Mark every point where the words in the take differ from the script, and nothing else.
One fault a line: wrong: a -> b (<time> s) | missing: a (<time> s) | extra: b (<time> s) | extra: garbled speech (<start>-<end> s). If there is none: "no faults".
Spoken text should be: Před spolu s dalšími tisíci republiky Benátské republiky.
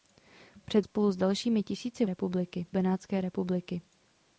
no faults